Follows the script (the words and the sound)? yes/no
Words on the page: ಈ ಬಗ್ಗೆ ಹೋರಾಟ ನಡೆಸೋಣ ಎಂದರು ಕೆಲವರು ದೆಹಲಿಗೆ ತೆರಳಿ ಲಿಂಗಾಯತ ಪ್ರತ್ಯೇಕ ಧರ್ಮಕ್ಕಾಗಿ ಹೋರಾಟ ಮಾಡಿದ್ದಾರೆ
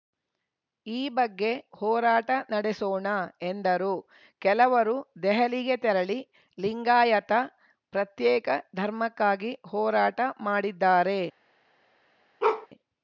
no